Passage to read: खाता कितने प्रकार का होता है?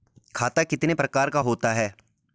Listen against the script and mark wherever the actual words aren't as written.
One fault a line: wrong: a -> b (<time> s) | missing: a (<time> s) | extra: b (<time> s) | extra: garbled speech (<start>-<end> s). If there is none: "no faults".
no faults